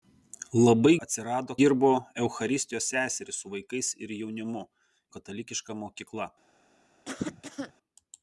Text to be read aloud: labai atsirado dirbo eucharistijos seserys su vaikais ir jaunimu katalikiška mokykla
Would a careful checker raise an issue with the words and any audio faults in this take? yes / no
yes